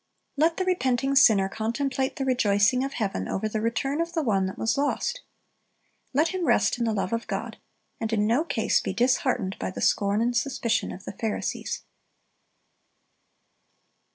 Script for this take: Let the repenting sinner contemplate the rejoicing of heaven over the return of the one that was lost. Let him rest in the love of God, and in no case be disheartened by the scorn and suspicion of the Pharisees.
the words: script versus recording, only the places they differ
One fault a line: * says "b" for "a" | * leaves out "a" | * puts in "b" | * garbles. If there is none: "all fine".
all fine